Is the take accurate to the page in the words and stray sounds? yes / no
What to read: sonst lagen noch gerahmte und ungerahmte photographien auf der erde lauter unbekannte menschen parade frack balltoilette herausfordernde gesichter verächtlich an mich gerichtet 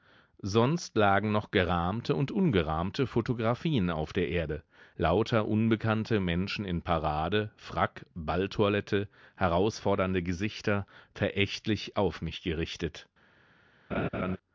no